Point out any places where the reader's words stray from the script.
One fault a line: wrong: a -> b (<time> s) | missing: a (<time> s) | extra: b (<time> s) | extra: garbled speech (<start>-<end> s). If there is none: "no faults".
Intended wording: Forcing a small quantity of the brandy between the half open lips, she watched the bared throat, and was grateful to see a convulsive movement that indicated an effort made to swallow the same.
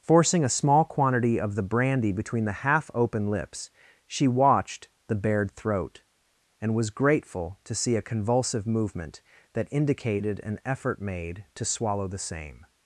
no faults